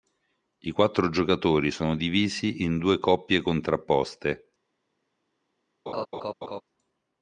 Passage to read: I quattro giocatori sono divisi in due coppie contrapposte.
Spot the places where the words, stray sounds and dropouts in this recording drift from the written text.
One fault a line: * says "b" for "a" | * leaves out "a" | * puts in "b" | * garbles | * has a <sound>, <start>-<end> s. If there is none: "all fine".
* has a laugh, 5.9-6.6 s